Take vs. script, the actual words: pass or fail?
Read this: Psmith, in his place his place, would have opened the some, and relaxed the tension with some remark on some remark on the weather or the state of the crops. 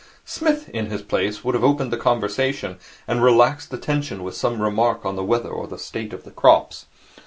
fail